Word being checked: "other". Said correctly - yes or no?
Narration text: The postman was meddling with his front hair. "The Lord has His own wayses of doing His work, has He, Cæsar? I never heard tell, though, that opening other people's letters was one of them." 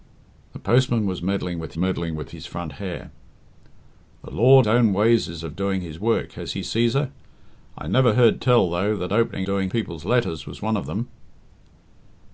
no